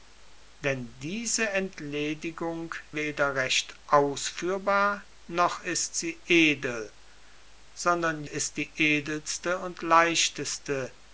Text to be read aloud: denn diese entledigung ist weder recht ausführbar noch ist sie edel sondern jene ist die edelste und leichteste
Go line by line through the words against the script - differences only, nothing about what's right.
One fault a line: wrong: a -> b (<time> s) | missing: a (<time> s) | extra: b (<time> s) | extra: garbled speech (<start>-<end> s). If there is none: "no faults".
missing: ist (2.7 s)
missing: jene (8.2 s)